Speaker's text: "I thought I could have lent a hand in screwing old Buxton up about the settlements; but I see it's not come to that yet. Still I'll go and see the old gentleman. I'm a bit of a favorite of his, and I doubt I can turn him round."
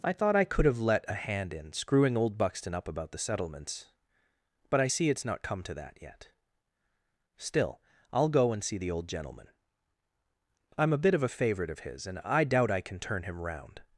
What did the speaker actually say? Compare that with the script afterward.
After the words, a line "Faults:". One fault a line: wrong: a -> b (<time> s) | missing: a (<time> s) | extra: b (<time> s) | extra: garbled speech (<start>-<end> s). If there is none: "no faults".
"I thought I could have let a hand in screwing old Buxton up about the settlements; but I see it's not come to that yet. Still I'll go and see the old gentleman. I'm a bit of a favorite of his, and I doubt I can turn him round."
Faults:
wrong: lent -> let (0.8 s)